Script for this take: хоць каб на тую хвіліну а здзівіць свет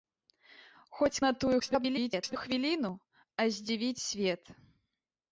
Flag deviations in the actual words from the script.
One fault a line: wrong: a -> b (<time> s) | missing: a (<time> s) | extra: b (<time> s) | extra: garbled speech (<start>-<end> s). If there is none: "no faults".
missing: каб (1.2 s)
extra: garbled speech (1.6-2.4 s)